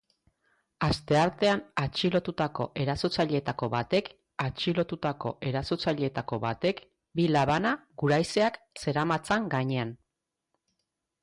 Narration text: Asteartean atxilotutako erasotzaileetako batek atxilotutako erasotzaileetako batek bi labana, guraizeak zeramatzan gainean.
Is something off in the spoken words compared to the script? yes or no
no